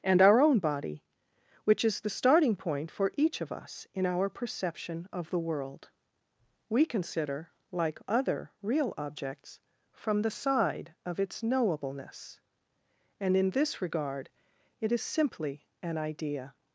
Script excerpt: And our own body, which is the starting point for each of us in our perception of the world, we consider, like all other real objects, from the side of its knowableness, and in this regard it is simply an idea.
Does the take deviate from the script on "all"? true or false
true